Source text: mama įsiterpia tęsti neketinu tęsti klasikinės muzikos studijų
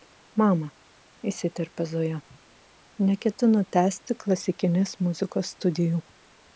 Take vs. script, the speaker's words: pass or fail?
fail